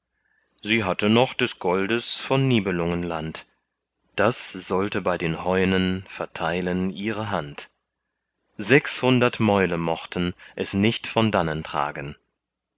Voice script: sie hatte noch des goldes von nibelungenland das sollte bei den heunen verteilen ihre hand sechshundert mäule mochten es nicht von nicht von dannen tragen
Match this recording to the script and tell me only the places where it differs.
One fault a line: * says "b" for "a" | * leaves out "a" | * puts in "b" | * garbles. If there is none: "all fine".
* leaves out "nicht von"